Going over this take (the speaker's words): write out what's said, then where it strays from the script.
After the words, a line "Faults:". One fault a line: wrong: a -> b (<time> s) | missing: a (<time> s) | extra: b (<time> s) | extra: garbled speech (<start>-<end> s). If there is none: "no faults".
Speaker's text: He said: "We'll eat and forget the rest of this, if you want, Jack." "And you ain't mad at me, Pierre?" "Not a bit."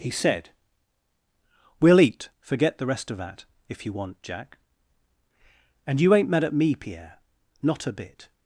He said: "We'll eat forget the rest of that, if you want, Jack." "And you ain't mad at me, Pierre?" "Not a bit."
Faults:
missing: and (2.3 s)
wrong: this -> that (3.2 s)